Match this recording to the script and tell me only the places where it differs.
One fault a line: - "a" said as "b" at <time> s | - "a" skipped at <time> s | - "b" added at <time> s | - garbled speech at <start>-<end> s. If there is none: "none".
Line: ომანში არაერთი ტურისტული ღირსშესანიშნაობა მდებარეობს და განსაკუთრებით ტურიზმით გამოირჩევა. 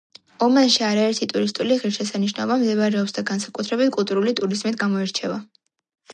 - "კულტურული" added at 4.0 s